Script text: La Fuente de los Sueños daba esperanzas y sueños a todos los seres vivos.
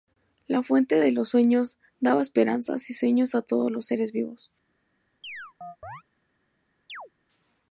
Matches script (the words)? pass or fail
pass